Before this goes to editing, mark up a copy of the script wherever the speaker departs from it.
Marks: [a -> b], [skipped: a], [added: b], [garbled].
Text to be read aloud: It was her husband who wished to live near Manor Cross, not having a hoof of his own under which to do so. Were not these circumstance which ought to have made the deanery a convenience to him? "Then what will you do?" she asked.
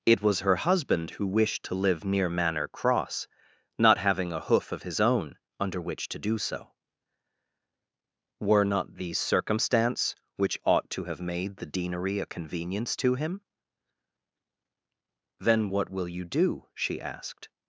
It was her husband who wished to live near Manor Cross, not having a hoof of his own under which to do so. Were not these circumstance which ought to have made the deanery a convenience to him? "Then what will you do?" she asked.